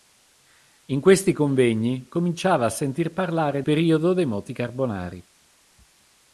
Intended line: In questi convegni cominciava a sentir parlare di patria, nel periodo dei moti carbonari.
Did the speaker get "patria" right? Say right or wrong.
wrong